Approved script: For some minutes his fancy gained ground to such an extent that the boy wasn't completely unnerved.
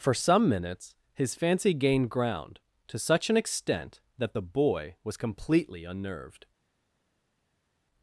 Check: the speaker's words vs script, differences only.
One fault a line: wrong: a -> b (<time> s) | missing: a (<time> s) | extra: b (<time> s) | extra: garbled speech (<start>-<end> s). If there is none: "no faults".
wrong: wasn't -> was (5.0 s)